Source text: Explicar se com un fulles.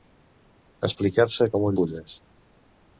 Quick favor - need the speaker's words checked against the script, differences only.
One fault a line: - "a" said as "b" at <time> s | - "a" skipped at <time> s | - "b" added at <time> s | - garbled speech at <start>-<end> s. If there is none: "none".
none